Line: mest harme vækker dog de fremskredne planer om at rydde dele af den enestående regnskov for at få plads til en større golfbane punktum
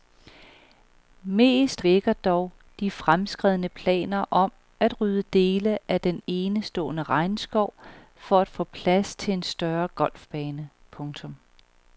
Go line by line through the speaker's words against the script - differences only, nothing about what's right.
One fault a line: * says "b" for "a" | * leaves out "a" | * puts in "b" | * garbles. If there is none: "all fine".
* leaves out "harme"